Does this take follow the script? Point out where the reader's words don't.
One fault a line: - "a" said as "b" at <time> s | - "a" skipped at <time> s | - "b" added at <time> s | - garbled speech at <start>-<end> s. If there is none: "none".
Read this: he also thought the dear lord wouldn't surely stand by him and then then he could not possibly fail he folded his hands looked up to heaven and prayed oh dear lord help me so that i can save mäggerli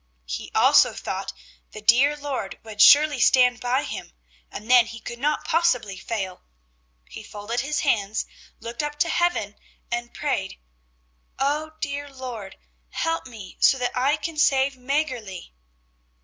- "wouldn't" said as "would" at 2.6 s
- "then" skipped at 4.9 s